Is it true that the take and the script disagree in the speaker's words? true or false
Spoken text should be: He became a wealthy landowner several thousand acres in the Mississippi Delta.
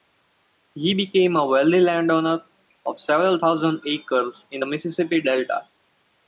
true